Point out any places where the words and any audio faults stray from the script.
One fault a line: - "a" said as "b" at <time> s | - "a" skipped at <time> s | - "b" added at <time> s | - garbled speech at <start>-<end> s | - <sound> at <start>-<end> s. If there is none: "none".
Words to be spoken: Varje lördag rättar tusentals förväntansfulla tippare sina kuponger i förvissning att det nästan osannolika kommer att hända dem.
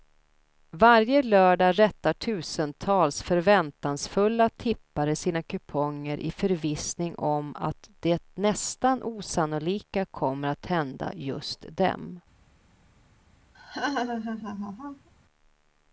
- "om" added at 7.1 s
- "just" added at 11.1 s
- laugh at 13.5-15.1 s